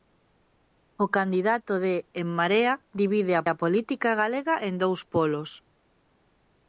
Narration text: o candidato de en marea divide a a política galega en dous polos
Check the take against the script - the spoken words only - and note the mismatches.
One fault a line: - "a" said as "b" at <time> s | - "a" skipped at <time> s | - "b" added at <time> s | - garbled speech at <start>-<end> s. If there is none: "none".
none